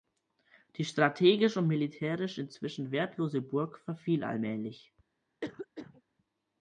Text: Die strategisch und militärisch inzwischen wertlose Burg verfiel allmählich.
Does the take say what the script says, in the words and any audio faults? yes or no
no